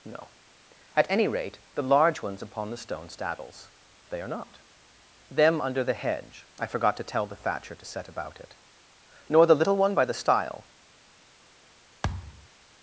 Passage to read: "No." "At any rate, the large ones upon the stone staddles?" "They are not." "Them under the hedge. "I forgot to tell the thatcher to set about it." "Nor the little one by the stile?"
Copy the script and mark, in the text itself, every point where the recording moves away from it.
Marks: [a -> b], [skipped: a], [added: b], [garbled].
"No." "At any rate, the large ones upon the stone staddles?" "They are not." "Them under the hedge. "I forgot to tell the thatcher to set about it." "Nor the little one by the stile?"